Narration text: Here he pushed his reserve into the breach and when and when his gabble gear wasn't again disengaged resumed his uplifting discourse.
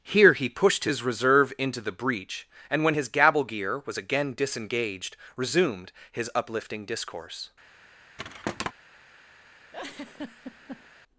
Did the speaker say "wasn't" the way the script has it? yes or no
no